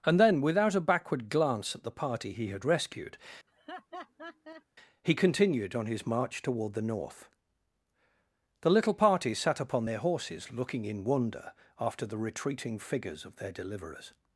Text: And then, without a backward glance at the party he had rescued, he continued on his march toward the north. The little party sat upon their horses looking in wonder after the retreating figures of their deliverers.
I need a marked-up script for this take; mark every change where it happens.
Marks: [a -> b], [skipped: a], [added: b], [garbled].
And then, without a backward glance at the party he had rescued, he continued on his march toward the north. The little party sat upon their horses looking in wonder after the retreating figures of their deliverers.